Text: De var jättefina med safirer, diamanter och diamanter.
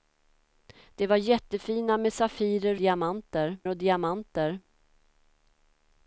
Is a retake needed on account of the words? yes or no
no